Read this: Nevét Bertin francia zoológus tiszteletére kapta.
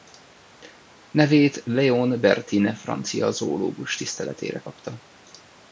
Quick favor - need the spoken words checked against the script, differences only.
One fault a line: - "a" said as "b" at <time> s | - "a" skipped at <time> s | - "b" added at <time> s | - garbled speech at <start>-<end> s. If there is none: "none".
- "Léon" added at 1.6 s